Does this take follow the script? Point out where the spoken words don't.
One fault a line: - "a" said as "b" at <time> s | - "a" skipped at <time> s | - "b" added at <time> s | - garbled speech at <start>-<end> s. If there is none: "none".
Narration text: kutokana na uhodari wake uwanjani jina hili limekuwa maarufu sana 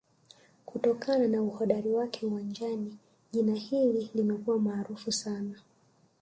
none